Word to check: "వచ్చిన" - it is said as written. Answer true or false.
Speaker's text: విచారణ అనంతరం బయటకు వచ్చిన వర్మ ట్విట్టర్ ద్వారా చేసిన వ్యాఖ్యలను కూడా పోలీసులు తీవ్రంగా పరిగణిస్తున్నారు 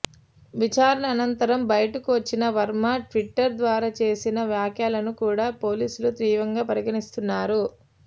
true